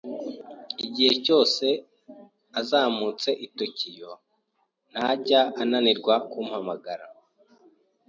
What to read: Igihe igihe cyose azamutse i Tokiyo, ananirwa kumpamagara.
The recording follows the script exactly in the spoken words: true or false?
false